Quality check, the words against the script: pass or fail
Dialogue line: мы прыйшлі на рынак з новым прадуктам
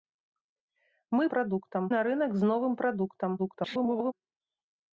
fail